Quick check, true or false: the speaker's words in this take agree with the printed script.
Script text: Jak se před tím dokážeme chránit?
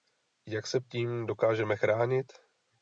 false